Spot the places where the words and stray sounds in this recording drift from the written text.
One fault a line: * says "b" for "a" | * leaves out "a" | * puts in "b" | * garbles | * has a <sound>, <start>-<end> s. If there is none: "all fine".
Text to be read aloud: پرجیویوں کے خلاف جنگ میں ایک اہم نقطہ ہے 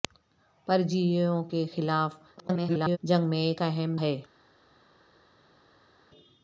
* garbles
* leaves out "نقطہ"